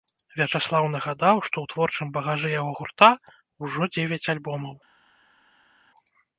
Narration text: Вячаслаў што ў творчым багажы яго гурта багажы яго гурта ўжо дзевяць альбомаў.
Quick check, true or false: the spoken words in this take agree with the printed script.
false